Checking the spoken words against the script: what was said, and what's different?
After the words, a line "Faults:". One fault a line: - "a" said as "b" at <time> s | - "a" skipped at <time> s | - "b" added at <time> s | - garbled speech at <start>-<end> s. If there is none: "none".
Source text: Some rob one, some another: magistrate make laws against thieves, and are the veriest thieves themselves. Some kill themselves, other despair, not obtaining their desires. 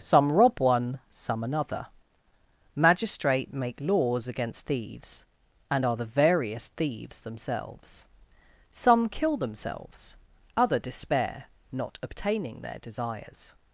Some rob one, some another: magistrate make laws against thieves, and are the veriest thieves themselves. Some kill themselves, other despair, not obtaining their desires.
Faults:
none